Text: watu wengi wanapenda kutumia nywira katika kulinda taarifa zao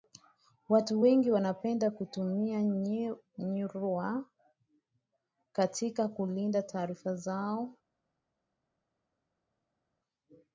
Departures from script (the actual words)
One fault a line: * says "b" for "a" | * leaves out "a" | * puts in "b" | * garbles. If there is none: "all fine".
all fine